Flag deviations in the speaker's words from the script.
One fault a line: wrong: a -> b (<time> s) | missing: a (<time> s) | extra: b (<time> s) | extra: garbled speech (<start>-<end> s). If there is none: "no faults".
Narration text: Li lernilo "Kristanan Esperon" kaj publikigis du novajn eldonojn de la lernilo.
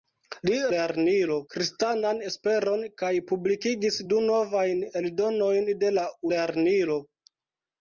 no faults